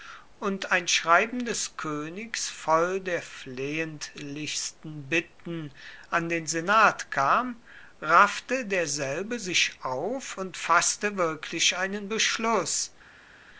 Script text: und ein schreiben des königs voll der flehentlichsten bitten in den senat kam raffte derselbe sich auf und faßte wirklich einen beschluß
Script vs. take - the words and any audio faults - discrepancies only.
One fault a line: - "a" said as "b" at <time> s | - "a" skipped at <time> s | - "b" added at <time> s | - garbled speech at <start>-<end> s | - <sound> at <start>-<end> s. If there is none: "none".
- "in" said as "an" at 6.1 s